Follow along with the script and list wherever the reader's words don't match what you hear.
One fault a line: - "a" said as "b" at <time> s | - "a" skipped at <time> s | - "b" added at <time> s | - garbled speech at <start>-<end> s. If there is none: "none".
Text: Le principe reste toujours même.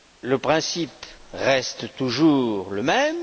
- "le" added at 2.7 s